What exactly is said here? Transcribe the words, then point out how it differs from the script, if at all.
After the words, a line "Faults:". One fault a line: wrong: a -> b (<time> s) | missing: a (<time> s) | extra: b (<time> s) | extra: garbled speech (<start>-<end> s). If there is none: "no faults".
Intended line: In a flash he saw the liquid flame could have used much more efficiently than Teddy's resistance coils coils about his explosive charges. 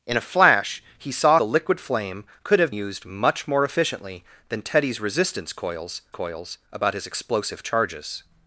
In a flash he saw the liquid flame could have used much more efficiently than Teddy's resistance coils coils about his explosive charges.
Faults:
no faults